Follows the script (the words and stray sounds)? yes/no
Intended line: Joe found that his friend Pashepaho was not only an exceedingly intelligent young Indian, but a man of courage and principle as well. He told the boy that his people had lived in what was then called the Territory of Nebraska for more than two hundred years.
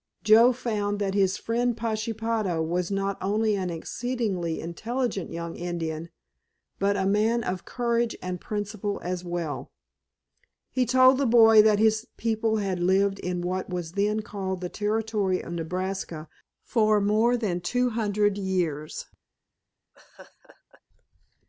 no